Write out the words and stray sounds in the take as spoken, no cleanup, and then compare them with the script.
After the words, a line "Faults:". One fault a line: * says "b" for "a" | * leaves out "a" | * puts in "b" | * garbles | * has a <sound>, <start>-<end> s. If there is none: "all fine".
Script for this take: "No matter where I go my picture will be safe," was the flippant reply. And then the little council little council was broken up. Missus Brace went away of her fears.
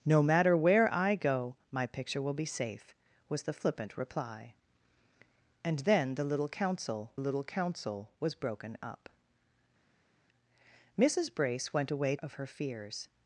"No matter where I go my picture will be safe," was the flippant reply. And then the little council little council was broken up. Missus Brace went away of her fears.
Faults:
all fine